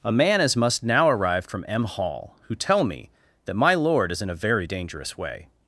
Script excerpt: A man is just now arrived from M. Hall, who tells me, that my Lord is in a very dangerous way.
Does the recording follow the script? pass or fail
fail